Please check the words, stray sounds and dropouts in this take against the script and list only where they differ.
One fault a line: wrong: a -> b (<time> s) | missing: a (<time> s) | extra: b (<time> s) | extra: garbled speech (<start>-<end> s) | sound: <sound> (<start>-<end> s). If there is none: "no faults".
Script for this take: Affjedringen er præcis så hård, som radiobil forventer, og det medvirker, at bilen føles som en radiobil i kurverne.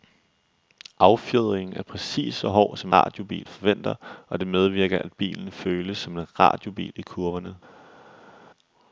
no faults